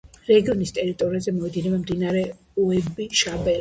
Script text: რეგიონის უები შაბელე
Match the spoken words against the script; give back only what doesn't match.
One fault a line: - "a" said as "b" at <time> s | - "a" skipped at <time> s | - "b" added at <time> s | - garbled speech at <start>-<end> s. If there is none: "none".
- "ტერიტორიაზე მოედინება მდინარე" added at 0.8 s